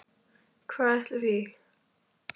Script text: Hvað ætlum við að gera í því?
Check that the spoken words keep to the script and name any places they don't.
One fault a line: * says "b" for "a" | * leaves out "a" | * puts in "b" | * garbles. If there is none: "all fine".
* leaves out "við að gera"